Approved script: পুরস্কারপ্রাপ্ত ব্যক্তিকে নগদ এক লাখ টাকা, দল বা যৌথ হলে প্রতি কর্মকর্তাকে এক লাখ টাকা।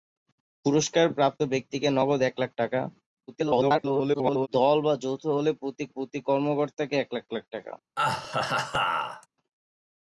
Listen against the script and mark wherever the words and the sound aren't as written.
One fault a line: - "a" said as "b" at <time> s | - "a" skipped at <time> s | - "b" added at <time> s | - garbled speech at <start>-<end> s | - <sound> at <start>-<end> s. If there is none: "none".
- garbled speech at 3.3-4.5 s
- "প্রতি" added at 5.9 s
- "লাখ" added at 7.3 s
- laugh at 8.0-9.3 s